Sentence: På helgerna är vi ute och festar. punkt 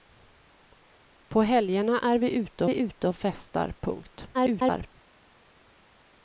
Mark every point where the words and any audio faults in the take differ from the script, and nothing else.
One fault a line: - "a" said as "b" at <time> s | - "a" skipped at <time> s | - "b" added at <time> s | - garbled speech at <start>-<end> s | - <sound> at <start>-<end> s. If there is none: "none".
- "vi ute" added at 2.6 s
- garbled speech at 4.3-4.9 s